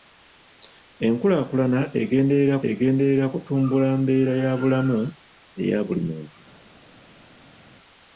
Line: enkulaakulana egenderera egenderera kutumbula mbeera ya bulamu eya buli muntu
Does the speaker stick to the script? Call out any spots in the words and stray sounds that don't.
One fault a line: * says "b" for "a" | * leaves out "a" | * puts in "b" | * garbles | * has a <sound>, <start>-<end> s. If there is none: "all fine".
all fine